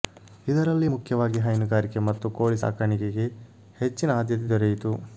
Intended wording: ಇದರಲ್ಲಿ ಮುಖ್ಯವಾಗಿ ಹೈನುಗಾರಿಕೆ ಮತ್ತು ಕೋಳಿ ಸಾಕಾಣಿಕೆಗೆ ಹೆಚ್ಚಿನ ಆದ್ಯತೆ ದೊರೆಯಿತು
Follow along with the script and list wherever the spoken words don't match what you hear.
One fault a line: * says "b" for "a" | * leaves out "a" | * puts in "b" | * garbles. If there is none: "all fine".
all fine